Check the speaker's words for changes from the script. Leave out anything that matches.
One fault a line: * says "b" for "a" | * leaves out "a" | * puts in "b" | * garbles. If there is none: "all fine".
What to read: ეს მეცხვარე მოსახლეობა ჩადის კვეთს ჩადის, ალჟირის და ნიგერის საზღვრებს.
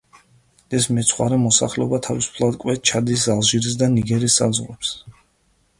* says "თავისუფლად" for "ჩადის"